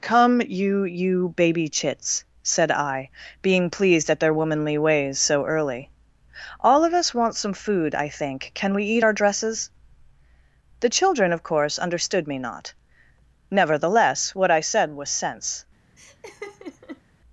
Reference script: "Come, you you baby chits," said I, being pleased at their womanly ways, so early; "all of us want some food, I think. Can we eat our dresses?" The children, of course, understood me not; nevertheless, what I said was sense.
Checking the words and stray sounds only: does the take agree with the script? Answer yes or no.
no